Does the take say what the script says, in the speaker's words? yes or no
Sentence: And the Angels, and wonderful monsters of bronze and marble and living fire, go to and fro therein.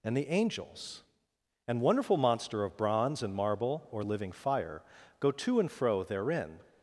no